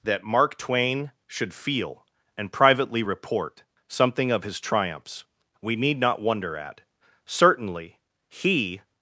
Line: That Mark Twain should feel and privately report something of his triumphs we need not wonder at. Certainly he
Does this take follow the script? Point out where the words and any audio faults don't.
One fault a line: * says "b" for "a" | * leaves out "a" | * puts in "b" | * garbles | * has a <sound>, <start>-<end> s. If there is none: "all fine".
all fine